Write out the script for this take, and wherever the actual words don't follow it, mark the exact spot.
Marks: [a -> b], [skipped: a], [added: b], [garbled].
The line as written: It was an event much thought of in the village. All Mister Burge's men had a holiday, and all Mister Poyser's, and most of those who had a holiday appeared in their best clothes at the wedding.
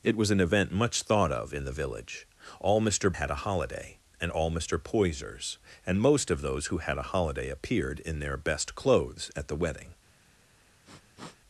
It was an event much thought of in the village. All Mister [skipped: Burge's men] had a holiday, and all Mister Poyser's, and most of those who had a holiday appeared in their best clothes at the wedding.